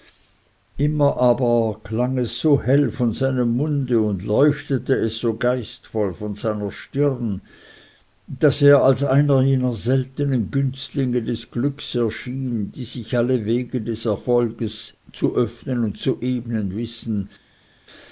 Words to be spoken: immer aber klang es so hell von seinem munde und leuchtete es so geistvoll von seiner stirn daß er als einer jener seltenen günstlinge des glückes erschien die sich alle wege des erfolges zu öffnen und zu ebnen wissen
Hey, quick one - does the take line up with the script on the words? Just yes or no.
yes